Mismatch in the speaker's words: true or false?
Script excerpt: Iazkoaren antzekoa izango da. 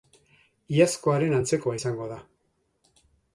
false